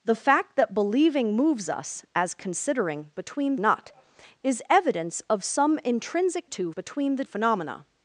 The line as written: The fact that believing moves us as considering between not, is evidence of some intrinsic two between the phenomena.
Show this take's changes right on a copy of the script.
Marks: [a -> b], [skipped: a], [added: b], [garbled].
The fact that believing moves us as considering between not, is evidence of some intrinsic two between the phenomena.